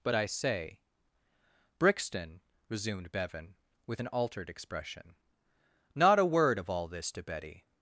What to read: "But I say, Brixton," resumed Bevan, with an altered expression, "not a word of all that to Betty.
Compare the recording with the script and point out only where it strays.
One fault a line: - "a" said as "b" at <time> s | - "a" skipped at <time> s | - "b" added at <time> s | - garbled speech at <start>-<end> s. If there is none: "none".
- "that" said as "this" at 6.9 s